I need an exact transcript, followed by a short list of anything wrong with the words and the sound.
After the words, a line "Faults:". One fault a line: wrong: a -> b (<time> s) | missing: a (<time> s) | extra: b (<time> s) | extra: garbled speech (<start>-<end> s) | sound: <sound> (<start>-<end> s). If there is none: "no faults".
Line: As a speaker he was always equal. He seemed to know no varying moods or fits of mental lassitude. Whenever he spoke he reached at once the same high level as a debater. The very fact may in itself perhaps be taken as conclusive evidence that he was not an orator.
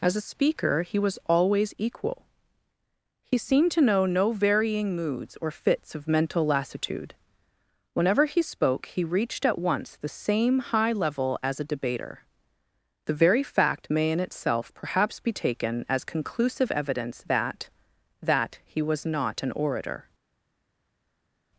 As a speaker he was always equal. He seemed to know no varying moods or fits of mental lassitude. Whenever he spoke he reached at once the same high level as a debater. The very fact may in itself perhaps be taken as conclusive evidence that that he was not an orator.
Faults:
extra: that (18.2 s)